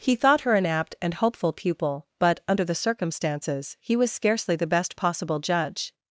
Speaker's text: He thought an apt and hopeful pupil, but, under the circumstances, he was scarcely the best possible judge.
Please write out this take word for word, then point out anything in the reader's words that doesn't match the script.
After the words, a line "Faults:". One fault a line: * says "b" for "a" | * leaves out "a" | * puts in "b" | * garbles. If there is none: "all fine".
He thought her an apt and hopeful pupil, but, under the circumstances, he was scarcely the best possible judge.
Faults:
* puts in "her"